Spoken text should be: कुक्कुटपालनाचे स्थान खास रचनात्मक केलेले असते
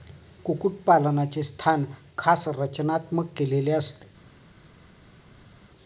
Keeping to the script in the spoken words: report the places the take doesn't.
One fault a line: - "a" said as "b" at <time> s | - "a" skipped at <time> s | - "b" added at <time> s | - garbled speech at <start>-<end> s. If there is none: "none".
none